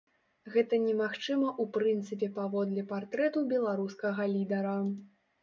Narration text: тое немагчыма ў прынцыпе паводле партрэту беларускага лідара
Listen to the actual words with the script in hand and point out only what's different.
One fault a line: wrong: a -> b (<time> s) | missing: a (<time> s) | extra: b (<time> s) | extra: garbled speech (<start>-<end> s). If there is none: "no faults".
wrong: тое -> гэта (0.5 s)